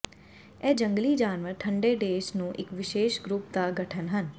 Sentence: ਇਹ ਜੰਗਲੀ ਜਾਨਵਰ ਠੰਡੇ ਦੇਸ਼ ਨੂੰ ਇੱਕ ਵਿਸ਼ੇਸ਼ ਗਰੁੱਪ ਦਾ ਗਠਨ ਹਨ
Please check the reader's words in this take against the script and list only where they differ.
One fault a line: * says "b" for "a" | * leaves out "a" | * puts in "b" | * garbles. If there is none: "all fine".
all fine